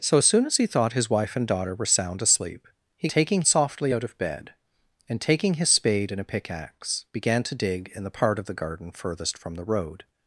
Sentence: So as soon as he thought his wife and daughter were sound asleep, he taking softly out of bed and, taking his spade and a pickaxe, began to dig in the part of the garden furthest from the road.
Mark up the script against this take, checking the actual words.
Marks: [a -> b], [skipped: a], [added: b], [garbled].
So as soon as he thought his wife and daughter were sound asleep, he taking softly out of bed and, taking his spade and a pickaxe, began to dig in the part of the garden furthest from the road.